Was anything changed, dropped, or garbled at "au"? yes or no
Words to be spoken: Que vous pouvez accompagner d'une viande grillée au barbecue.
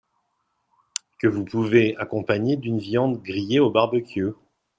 no